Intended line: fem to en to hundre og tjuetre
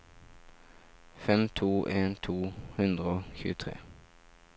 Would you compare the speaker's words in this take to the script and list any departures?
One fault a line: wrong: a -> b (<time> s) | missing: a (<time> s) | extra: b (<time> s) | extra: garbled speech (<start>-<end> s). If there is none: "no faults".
no faults